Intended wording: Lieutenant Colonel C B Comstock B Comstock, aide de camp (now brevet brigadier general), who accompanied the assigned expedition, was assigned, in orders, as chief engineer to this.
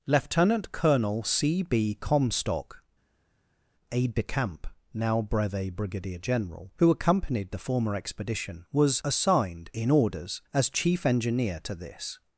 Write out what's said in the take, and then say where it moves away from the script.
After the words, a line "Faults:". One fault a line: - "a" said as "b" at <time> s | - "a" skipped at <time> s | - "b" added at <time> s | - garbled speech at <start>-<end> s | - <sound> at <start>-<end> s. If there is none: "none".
Lieutenant Colonel C B Comstock, aide de camp (now brevet brigadier general), who accompanied the former expedition, was assigned, in orders, as chief engineer to this.
Faults:
- "B Comstock" skipped at 2.8 s
- "assigned" said as "former" at 7.6 s